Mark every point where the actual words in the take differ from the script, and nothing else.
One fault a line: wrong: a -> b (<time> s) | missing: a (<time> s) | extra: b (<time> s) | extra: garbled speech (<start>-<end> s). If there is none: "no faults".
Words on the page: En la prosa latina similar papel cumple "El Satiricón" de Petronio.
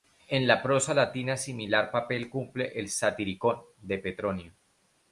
no faults